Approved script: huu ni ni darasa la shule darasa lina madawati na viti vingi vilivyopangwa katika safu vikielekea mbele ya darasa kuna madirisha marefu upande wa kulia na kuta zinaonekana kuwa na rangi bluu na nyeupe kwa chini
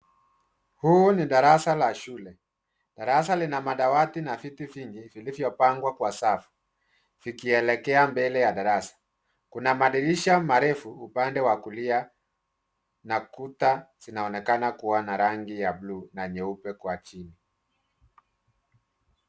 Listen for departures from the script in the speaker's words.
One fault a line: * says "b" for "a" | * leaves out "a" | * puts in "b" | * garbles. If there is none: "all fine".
* leaves out "ni"
* says "kwa" for "katika"
* puts in "ya"